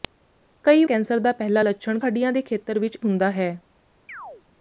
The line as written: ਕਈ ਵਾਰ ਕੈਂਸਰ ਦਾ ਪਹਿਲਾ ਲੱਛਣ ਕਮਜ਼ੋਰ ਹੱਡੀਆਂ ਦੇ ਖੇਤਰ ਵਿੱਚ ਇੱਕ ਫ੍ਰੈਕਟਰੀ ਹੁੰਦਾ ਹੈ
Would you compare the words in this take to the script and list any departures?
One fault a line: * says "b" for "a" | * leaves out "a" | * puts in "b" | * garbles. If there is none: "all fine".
* leaves out "ਵਾਰ"
* leaves out "ਕਮਜ਼ੋਰ"
* leaves out "ਇੱਕ ਫ੍ਰੈਕਟਰੀ"